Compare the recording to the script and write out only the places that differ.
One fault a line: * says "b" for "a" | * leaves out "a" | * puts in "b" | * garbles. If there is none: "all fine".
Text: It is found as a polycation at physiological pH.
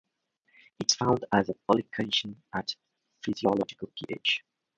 all fine